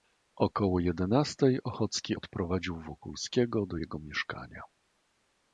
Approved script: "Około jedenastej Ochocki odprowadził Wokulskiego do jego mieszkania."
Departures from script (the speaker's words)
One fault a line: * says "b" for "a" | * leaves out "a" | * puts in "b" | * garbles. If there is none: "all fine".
all fine